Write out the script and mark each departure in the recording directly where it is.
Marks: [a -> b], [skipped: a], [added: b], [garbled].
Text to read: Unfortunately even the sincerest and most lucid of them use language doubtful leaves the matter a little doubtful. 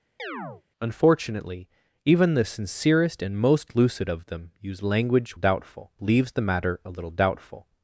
Unfortunately even the sincerest and most lucid of them use language doubtful leaves the matter a little doubtful.